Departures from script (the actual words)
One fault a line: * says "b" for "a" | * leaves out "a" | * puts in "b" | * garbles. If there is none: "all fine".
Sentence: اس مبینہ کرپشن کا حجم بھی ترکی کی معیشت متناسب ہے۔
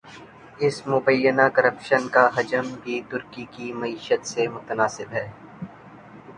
* puts in "سے"